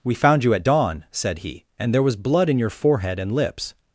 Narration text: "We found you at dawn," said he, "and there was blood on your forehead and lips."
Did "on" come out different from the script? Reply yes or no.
yes